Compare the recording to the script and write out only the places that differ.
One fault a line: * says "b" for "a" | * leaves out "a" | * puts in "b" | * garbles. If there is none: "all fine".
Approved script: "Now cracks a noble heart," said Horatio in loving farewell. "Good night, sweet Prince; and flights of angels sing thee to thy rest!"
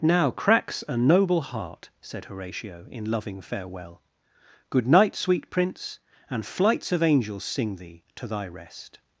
all fine